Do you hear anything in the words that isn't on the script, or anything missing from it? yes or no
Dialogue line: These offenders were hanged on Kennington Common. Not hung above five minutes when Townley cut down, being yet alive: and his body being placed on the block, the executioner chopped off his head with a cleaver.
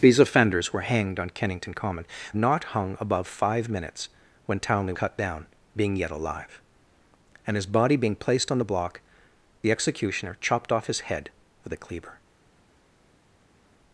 no